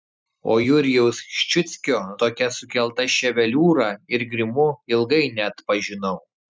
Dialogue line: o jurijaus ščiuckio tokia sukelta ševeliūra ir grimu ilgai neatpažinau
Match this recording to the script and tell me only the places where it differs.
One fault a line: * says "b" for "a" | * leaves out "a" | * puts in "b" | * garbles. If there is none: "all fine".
all fine